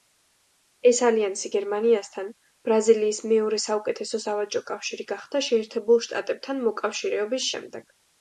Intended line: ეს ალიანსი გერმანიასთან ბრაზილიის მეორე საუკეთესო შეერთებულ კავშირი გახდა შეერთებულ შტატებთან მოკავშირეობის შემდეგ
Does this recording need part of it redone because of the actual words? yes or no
yes